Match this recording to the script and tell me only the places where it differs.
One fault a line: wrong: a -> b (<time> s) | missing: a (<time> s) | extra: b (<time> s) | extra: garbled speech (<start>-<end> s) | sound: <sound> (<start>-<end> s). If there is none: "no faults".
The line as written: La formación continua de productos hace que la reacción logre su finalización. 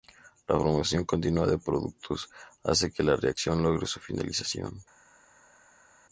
no faults